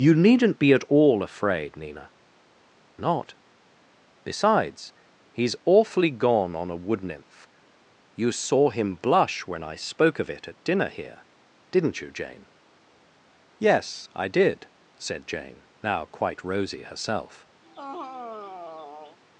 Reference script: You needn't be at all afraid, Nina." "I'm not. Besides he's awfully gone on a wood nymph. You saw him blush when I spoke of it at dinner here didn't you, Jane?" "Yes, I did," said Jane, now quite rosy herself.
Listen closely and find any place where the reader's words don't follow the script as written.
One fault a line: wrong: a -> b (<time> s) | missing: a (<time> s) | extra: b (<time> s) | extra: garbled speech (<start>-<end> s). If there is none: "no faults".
missing: I'm (2.1 s)